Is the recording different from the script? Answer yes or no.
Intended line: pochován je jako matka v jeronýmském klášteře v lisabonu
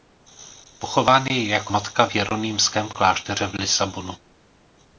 no